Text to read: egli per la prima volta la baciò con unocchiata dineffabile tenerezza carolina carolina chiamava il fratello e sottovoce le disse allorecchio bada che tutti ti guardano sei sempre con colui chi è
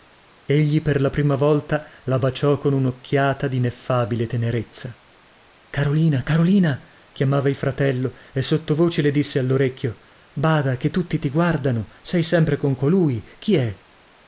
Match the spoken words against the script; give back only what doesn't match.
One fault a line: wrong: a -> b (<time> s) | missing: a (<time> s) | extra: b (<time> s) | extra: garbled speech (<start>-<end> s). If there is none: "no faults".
no faults